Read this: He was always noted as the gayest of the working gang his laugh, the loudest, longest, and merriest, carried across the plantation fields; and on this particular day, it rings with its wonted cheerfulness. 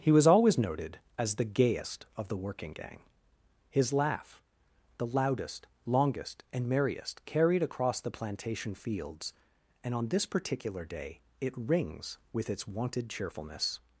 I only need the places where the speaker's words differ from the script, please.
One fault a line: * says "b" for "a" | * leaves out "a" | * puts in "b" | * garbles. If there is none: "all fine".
all fine